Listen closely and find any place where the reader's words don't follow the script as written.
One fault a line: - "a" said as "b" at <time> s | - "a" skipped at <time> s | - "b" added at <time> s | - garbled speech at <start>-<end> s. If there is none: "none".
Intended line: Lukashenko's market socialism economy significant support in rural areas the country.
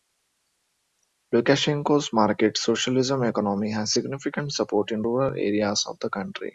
- "has" added at 3.7 s
- "of" added at 5.9 s